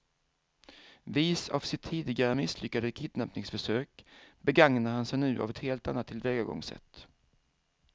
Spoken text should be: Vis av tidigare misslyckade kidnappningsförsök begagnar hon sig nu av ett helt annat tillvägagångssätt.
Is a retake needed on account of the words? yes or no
yes